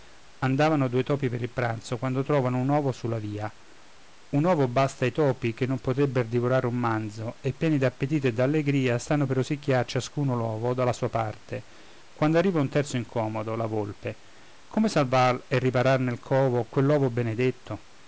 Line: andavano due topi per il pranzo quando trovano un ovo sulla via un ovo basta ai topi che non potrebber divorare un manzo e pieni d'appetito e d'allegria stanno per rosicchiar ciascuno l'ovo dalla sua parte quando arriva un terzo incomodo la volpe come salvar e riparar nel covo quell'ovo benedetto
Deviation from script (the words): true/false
false